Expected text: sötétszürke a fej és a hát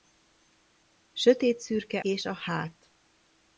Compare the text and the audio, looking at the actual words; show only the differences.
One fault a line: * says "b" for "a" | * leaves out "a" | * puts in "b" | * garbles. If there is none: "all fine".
* leaves out "a fej"